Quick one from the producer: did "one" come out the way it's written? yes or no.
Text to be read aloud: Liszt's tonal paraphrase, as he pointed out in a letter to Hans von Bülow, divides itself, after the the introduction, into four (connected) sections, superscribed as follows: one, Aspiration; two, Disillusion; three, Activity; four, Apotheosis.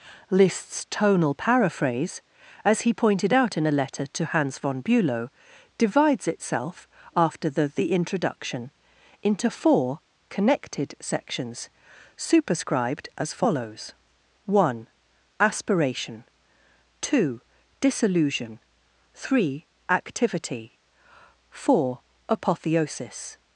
yes